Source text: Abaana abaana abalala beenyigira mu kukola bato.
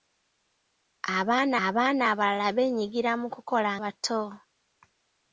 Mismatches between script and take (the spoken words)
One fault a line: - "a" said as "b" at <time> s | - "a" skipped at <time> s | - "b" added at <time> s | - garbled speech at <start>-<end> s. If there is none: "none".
none